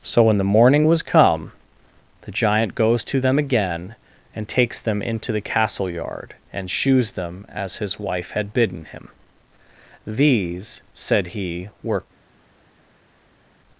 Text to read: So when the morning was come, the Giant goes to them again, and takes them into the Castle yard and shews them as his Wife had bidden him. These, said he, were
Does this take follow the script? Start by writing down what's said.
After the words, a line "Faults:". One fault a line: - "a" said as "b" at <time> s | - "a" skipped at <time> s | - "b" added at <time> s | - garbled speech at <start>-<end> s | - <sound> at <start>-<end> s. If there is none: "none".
So when the morning was come, the Giant goes to them again, and takes them into the Castle yard and shews them as his Wife had bidden him. These, said he, were
Faults:
none